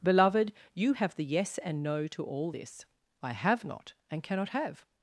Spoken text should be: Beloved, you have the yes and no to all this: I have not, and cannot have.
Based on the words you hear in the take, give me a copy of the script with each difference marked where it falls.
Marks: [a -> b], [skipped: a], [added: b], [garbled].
Beloved, you have the yes and no to all this: I have not, and cannot have.